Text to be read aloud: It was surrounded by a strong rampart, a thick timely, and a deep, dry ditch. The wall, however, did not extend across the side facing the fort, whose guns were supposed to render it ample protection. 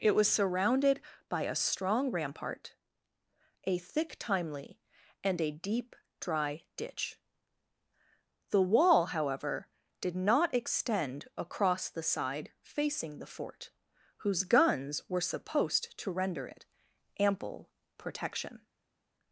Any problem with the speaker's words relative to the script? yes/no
no